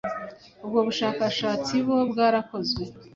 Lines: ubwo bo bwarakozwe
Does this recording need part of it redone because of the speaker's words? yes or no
yes